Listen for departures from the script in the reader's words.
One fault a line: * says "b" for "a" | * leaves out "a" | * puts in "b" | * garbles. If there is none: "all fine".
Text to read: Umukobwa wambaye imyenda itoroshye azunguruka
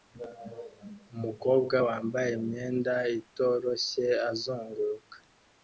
all fine